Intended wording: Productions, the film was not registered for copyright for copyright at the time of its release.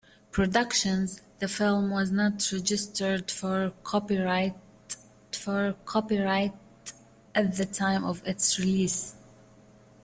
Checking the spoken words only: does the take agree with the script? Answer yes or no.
yes